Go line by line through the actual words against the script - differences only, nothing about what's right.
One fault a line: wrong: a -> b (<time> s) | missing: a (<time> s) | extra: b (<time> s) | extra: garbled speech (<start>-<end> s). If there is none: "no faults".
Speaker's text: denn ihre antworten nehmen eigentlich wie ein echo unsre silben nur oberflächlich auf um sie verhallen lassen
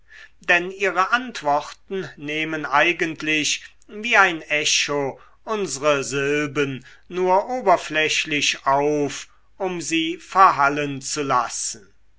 extra: zu (11.0 s)